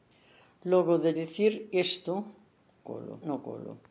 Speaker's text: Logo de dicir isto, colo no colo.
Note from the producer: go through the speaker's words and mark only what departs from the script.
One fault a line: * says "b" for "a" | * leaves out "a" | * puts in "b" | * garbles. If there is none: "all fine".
all fine